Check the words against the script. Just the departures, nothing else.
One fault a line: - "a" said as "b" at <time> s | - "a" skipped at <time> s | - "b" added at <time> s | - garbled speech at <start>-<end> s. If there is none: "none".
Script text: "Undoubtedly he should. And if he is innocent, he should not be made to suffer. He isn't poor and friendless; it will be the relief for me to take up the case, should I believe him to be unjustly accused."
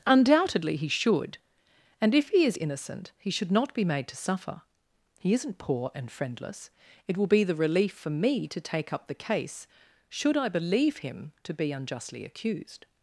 none